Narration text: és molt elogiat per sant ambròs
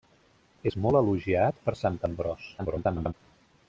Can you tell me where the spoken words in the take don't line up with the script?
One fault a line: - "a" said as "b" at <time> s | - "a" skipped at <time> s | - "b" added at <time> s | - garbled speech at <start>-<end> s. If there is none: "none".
- garbled speech at 2.6-3.1 s